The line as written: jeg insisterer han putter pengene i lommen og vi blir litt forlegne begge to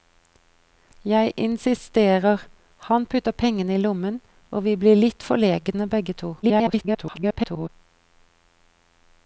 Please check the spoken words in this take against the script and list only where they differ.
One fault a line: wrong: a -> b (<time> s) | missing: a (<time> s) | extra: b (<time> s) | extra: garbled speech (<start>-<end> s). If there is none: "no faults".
extra: garbled speech (6.4-7.7 s)